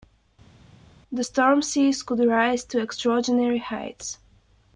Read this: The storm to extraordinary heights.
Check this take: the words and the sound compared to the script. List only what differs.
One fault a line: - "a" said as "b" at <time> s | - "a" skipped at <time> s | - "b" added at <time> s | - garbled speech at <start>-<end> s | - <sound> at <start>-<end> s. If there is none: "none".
- "seas could rise" added at 1.6 s